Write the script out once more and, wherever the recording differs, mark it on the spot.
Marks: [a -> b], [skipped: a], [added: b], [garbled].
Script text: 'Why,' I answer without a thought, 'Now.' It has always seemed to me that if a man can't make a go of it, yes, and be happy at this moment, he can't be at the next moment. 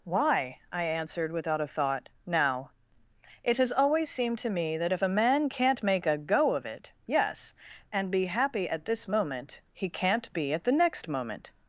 'Why,' I [answer -> answered] without a thought, 'Now.' It has always seemed to me that if a man can't make a go of it, yes, and be happy at this moment, he can't be at the next moment.